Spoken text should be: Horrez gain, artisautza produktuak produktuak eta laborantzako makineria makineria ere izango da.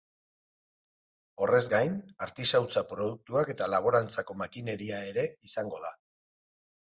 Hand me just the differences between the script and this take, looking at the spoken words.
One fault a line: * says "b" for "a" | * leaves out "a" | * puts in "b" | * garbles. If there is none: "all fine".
* leaves out "produktuak"
* leaves out "makineria"